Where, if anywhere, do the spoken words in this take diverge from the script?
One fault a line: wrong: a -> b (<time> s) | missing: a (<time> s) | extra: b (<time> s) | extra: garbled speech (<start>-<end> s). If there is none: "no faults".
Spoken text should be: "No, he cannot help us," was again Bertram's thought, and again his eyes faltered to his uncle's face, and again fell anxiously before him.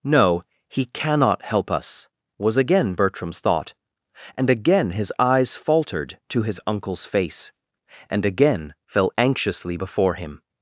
no faults